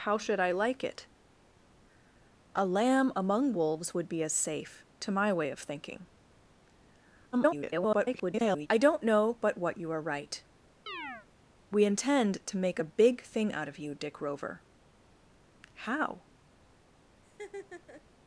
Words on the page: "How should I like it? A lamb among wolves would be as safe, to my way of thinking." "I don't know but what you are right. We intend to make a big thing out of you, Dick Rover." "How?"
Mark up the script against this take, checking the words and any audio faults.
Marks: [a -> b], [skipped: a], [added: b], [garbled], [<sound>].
"How should I like it? A lamb among wolves would be as safe, to my way of thinking." [garbled] "I don't know but what you are right. [chirp] We intend to make a big thing out of you, Dick Rover." "How?" [laugh]